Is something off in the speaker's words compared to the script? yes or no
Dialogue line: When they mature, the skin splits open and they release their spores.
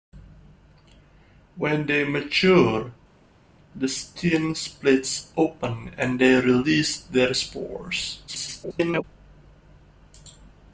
yes